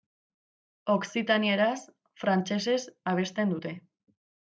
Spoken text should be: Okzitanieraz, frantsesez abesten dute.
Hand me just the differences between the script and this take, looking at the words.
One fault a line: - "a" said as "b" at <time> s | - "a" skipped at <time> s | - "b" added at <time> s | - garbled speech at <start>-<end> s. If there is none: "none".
none